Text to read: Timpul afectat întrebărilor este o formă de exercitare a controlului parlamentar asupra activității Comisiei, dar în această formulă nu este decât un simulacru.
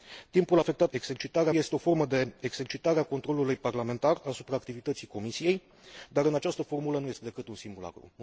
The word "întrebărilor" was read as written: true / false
false